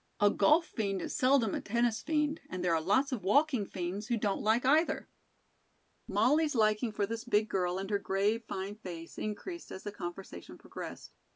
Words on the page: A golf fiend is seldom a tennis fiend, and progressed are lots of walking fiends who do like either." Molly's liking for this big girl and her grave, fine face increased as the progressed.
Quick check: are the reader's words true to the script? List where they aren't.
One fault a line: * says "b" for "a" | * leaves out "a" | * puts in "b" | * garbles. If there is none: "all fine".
* says "there" for "progressed"
* says "don't" for "do"
* puts in "conversation"